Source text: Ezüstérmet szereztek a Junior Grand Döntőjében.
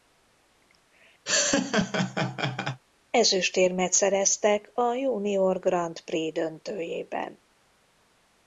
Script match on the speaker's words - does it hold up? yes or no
no